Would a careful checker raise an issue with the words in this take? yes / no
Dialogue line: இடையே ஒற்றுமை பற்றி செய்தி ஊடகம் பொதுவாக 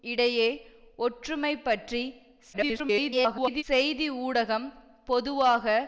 yes